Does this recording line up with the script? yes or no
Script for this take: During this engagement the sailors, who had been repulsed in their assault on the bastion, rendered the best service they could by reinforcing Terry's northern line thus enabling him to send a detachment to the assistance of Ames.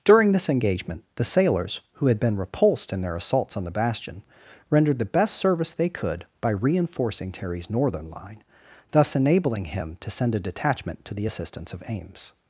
no